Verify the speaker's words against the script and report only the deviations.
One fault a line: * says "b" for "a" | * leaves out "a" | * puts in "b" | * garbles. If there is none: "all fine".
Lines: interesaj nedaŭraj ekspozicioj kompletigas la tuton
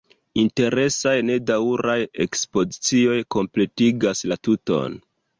all fine